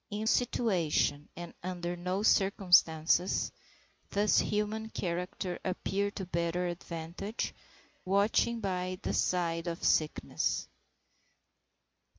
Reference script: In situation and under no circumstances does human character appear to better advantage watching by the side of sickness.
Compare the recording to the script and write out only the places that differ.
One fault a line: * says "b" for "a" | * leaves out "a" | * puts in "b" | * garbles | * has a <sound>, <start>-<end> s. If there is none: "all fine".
all fine